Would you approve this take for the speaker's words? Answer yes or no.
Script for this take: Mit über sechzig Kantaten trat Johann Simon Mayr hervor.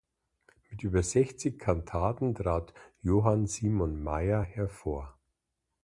yes